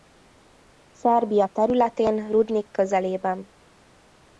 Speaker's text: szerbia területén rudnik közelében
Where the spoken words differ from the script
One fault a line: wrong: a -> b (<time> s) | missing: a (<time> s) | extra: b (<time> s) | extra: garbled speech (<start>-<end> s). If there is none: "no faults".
no faults